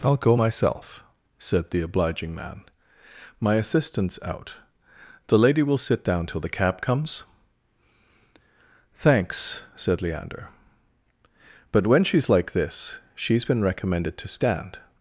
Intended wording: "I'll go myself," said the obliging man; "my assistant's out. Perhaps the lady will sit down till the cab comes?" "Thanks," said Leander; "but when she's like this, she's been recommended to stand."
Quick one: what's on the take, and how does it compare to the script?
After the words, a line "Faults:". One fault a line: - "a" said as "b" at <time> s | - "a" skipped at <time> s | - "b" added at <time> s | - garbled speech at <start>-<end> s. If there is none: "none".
"I'll go myself," said the obliging man; "my assistant's out. the lady will sit down till the cab comes?" "Thanks," said Leander; "but when she's like this, she's been recommended to stand."
Faults:
- "Perhaps" skipped at 4.5 s